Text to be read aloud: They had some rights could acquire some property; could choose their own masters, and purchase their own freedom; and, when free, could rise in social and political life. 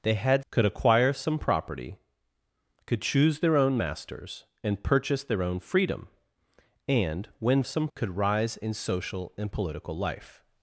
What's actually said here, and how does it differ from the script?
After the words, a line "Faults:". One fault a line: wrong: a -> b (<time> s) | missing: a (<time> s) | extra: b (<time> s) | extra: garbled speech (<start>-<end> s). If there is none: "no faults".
They had could acquire some property; could choose their own masters, and purchase their own freedom; and, when some, could rise in social and political life.
Faults:
missing: some rights (0.4 s)
wrong: free -> some (7.6 s)